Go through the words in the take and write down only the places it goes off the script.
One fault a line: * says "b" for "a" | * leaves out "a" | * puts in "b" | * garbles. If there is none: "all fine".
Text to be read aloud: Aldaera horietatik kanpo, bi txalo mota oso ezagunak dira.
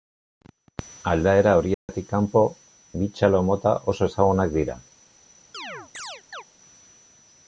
all fine